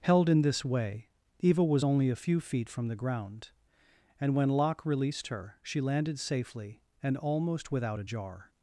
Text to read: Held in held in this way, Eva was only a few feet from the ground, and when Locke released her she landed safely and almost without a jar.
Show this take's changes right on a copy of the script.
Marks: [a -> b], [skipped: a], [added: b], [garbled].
Held in [skipped: held in] this way, Eva was only a few feet from the ground, and when Locke released her she landed safely and almost without a jar.